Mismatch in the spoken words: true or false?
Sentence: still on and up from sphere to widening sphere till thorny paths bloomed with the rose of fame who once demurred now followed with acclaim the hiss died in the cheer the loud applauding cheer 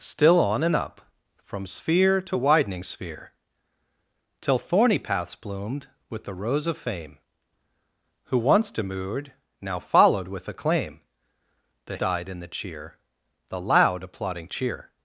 true